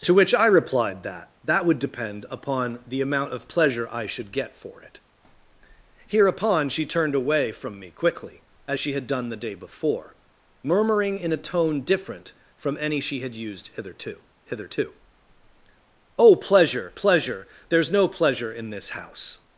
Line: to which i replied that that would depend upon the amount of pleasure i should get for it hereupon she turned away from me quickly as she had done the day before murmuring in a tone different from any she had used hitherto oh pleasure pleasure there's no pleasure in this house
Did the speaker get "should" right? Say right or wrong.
right